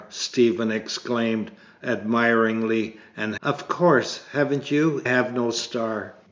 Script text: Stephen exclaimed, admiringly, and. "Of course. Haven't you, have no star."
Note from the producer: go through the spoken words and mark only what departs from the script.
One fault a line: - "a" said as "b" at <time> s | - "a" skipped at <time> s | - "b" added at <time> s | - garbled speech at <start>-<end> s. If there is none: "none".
none